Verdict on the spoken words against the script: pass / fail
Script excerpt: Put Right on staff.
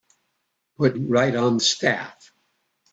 pass